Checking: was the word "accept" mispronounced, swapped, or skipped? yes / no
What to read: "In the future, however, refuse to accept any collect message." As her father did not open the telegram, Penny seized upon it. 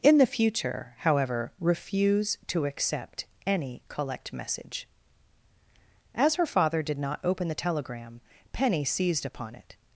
no